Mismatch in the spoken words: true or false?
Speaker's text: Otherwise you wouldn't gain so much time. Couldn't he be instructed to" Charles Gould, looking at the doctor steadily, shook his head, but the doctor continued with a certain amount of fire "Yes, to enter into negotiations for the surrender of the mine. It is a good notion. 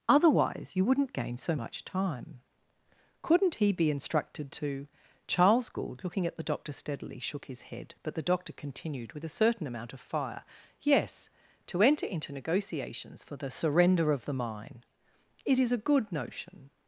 false